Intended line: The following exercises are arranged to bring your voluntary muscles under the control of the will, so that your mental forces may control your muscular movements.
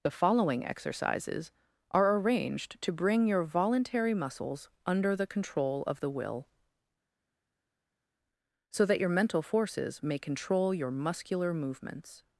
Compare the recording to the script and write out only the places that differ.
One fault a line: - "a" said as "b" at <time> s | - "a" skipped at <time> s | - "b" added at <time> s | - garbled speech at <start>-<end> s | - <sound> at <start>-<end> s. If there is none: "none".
none